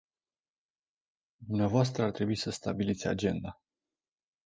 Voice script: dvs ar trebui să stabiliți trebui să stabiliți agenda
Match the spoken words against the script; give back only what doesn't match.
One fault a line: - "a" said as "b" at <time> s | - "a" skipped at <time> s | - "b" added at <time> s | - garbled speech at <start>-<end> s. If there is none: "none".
- "trebui să stabiliți" skipped at 3.1 s